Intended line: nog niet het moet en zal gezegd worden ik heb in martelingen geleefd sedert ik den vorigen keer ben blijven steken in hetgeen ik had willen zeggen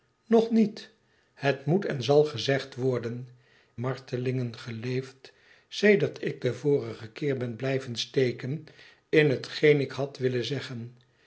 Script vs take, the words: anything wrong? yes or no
yes